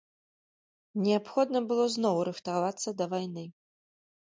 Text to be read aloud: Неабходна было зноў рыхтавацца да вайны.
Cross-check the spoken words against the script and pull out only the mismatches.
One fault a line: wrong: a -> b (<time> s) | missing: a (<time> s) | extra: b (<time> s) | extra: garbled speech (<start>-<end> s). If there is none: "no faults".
no faults